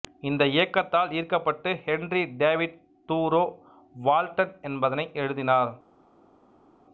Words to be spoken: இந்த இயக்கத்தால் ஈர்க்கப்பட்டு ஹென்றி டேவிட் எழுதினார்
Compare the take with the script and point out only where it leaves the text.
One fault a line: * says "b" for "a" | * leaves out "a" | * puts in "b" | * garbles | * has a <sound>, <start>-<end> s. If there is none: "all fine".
* puts in "தூரோ வால்டன் என்பதனை"